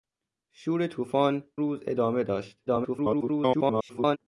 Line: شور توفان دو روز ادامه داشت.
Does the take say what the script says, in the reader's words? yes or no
no